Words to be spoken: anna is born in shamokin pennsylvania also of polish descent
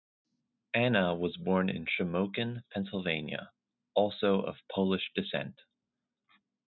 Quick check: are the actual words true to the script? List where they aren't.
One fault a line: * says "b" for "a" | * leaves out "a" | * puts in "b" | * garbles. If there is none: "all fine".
* says "was" for "is"